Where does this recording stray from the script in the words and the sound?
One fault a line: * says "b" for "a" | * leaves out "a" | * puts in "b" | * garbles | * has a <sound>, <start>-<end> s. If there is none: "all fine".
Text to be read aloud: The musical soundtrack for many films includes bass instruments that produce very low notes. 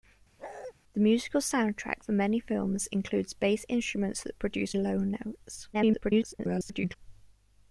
* has a bark, 0.4-0.7 s
* leaves out "very"
* garbles